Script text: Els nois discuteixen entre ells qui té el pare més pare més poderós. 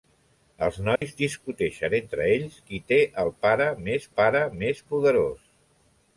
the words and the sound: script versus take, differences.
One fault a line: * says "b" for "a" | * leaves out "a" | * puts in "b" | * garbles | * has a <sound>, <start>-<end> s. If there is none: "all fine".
* has a dropout, 1.0-1.0 s